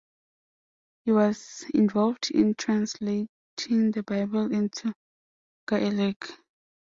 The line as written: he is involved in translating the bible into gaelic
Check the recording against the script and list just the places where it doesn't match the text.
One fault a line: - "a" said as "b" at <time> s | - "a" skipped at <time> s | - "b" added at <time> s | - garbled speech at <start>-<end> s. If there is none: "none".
- "is" said as "was" at 1.1 s